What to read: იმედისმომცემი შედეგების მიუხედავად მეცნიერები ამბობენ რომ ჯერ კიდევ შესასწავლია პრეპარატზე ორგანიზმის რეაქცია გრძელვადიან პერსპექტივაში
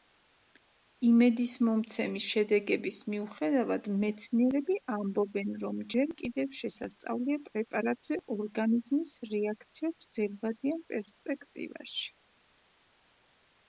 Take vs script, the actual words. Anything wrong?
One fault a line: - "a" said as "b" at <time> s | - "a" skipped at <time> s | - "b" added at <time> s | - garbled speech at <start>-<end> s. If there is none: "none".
none